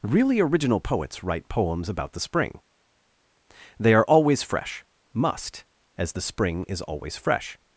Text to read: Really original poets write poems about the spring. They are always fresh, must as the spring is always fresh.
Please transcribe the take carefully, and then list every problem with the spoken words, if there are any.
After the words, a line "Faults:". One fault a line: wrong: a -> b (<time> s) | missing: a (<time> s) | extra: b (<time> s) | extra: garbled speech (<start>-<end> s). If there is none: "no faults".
Really original poets write poems about the spring. They are always fresh, must as the spring is always fresh.
Faults:
no faults